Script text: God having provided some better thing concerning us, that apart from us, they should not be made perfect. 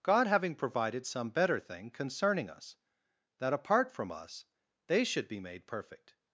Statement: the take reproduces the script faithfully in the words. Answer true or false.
false